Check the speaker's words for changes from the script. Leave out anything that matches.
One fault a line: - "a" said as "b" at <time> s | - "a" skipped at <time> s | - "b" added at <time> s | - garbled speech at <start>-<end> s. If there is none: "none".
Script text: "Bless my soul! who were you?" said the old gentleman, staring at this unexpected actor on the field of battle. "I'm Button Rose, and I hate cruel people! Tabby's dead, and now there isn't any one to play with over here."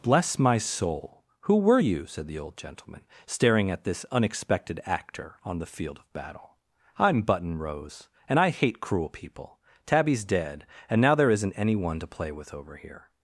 none